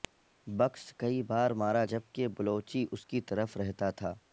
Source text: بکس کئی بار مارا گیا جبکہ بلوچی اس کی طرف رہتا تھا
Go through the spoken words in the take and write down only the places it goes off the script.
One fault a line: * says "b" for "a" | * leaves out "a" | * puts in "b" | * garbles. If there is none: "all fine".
* leaves out "گیا"